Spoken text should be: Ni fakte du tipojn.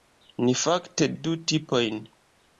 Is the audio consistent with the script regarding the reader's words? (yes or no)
yes